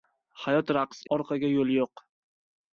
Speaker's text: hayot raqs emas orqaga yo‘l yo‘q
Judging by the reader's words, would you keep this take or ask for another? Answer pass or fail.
fail